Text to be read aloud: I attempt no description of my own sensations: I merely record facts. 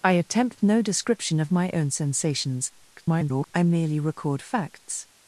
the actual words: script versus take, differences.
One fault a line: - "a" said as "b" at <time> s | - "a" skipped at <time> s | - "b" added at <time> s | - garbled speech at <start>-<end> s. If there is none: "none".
- garbled speech at 2.9-3.5 s